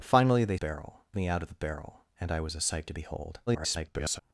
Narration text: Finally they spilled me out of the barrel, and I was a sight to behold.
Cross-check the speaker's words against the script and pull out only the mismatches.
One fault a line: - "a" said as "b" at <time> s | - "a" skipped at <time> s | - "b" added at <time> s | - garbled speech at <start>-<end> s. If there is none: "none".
- "spilled" said as "barrel" at 0.5 s
- garbled speech at 3.5-4.2 s